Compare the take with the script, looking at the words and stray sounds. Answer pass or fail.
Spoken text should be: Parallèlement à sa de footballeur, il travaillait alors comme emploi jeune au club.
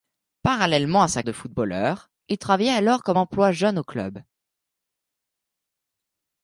pass